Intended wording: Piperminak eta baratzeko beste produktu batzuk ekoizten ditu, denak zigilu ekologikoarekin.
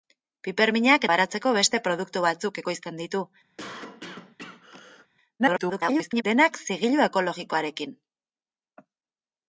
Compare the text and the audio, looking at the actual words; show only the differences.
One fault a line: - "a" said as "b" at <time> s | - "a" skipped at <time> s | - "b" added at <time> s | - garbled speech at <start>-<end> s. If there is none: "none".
- "eta" skipped at 1.0 s
- garbled speech at 5.4-6.2 s